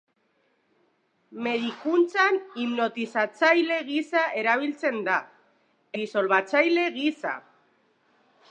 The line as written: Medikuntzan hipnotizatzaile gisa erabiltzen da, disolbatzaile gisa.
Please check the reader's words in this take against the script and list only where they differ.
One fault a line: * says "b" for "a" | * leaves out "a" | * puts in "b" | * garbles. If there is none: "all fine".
all fine